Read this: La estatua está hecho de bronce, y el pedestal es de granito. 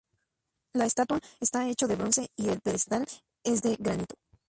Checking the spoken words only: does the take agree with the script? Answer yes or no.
yes